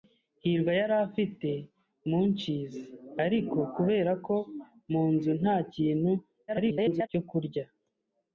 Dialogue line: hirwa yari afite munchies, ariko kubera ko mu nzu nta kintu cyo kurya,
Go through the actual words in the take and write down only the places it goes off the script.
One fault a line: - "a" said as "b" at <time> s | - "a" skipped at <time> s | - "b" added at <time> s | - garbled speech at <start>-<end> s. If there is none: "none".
- garbled speech at 6.5-7.1 s